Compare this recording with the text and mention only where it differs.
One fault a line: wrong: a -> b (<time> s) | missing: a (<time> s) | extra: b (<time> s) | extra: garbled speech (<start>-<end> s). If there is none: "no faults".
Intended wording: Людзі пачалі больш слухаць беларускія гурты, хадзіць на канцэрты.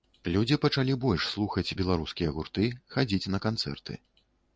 no faults